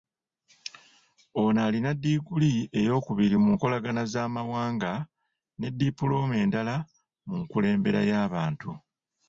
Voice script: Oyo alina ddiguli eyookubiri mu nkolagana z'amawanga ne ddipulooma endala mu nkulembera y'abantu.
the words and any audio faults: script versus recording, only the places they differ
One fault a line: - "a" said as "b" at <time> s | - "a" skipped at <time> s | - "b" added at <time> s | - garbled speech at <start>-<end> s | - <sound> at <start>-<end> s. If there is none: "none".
- "Oyo" said as "Ono" at 1.4 s